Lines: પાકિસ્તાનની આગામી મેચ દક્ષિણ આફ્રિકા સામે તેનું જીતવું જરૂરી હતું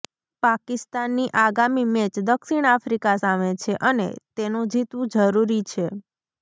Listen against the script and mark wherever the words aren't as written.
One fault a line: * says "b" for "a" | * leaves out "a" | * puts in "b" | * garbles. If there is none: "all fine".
* puts in "છે અને"
* says "છે" for "હતું"